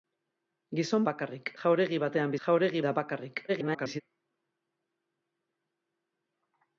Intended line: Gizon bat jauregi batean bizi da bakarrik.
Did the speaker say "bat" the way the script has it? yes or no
no